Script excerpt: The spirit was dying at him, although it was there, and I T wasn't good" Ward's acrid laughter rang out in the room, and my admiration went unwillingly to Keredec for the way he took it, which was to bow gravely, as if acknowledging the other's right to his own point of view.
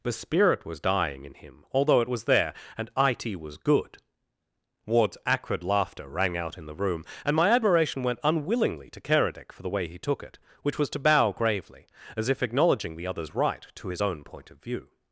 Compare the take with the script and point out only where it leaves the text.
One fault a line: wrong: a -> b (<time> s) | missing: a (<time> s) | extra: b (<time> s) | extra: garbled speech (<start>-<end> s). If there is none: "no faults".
wrong: at -> in (1.2 s)
wrong: wasn't -> was (3.4 s)